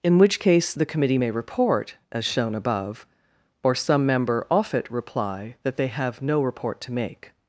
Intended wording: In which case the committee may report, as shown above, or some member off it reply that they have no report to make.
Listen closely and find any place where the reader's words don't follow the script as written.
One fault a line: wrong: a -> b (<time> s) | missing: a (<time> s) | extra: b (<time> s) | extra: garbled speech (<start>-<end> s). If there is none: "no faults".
no faults